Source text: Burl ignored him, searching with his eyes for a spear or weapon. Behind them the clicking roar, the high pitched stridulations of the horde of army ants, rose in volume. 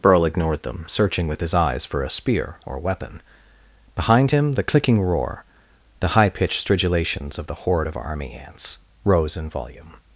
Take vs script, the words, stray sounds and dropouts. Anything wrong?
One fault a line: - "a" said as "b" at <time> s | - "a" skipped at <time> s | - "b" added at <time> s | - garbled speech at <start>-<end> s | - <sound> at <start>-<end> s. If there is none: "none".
- "him" said as "them" at 0.6 s
- "them" said as "him" at 4.3 s